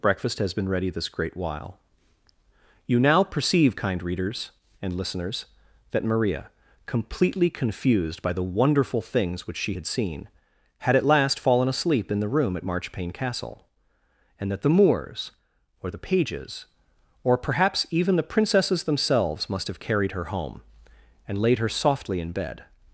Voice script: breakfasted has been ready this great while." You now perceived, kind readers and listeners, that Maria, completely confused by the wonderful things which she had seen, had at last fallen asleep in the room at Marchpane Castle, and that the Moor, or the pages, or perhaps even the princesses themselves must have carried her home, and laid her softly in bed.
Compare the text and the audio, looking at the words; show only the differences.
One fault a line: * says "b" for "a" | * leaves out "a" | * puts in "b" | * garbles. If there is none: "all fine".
* says "breakfast" for "breakfasted"
* says "perceive" for "perceived"
* says "Moors" for "Moor"